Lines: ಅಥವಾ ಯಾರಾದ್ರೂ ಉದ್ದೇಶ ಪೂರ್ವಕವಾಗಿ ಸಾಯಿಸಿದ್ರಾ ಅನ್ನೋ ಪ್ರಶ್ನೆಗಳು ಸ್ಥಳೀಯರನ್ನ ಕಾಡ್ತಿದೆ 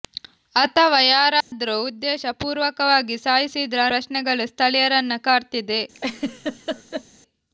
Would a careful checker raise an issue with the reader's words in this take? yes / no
yes